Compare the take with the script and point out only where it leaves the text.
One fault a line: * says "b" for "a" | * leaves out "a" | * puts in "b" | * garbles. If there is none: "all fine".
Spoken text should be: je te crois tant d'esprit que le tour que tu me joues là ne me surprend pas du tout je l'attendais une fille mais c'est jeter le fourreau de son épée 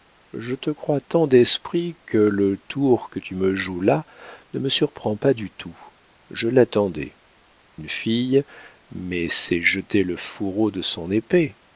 all fine